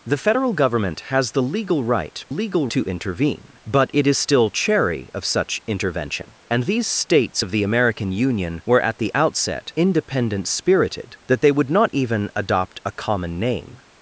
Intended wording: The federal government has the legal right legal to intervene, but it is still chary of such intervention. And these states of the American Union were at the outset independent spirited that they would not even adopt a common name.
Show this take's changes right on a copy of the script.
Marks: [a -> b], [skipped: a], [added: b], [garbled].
The federal government has the legal right legal to intervene, but it is still chary of such intervention. And these states of the American Union were at the outset independent spirited that they would not even adopt a common name.